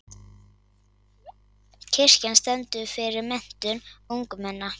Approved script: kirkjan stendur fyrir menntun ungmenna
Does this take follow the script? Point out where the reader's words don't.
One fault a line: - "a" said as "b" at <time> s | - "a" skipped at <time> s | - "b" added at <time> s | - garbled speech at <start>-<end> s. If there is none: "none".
none